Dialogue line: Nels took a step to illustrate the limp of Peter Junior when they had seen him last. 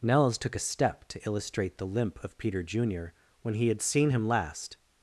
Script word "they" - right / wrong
wrong